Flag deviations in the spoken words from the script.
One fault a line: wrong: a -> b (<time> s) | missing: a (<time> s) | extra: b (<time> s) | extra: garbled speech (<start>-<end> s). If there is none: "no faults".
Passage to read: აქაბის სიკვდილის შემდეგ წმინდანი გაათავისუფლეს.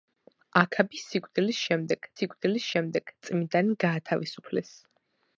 extra: სიკვდილის შემდეგ (2.2 s)